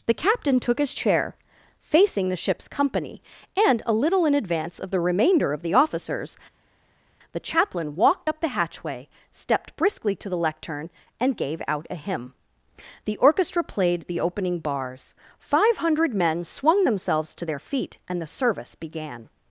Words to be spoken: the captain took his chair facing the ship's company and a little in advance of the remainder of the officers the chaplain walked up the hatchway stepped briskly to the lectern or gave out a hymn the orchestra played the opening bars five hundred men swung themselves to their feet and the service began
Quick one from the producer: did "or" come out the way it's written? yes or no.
no